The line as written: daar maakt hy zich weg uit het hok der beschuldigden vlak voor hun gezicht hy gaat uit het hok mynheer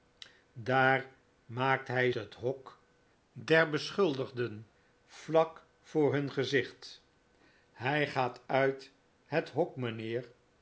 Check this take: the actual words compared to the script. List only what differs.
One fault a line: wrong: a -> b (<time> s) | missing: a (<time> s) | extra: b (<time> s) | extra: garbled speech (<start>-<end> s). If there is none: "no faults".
missing: zich weg uit (2.1 s)